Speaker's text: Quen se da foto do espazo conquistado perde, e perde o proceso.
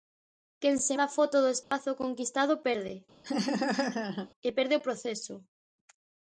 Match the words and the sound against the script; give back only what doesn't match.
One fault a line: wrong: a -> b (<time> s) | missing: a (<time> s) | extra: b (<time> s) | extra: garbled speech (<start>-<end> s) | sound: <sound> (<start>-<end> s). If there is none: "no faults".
sound: dropout (1.6-1.7 s)
sound: laugh (3.2-4.3 s)